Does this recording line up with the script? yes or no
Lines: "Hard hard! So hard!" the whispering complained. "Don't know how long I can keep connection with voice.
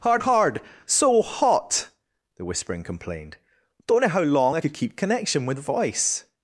no